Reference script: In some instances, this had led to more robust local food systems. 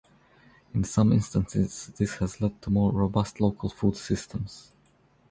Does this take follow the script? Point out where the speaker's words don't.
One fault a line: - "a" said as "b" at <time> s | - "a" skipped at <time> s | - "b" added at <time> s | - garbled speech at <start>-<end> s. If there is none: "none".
- "had" said as "has" at 2.1 s